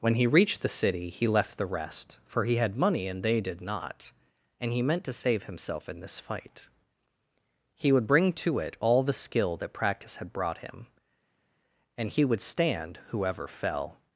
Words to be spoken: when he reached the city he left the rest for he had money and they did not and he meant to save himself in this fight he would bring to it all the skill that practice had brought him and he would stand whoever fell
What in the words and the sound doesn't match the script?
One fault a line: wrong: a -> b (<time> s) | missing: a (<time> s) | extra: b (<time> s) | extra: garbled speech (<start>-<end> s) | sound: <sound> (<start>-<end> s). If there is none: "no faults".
no faults